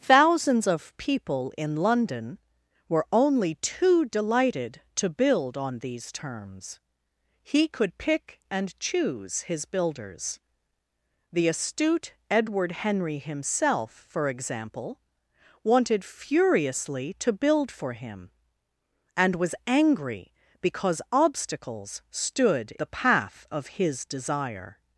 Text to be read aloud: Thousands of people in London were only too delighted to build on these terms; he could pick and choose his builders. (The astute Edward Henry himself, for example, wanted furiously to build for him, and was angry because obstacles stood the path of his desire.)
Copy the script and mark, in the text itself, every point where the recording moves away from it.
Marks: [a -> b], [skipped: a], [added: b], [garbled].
Thousands of people in London were only too delighted to build on these terms; he could pick and choose his builders. (The astute Edward Henry himself, for example, wanted furiously to build for him, and was angry because obstacles stood the path of his desire.)